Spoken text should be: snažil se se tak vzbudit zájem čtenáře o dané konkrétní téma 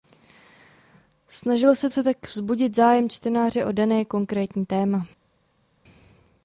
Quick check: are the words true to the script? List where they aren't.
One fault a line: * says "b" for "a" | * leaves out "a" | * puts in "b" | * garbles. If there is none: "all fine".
all fine